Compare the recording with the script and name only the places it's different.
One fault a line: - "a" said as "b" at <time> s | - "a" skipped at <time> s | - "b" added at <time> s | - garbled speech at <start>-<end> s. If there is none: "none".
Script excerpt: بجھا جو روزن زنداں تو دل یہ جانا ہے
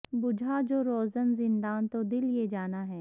none